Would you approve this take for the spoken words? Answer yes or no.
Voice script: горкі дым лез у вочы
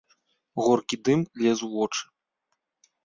yes